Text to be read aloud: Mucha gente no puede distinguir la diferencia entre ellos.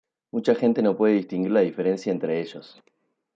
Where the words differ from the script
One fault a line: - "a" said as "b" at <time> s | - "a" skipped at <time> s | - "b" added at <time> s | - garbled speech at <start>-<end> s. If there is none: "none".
none